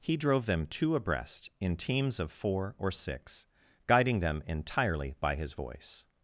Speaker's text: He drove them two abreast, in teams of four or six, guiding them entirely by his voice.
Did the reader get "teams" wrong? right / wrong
right